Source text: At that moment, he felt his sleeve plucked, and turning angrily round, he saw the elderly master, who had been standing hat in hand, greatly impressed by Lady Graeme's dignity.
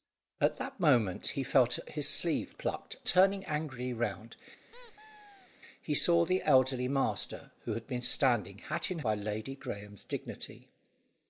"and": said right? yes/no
no